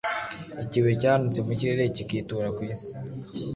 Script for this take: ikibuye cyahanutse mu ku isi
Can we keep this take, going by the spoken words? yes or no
no